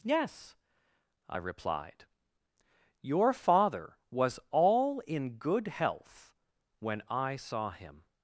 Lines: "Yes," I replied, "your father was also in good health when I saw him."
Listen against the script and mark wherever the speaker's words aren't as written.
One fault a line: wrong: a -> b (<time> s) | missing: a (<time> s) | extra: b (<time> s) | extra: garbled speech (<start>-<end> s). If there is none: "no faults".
wrong: also -> all (4.5 s)